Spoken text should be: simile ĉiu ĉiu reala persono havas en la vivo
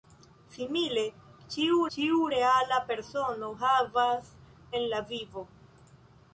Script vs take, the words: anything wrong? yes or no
no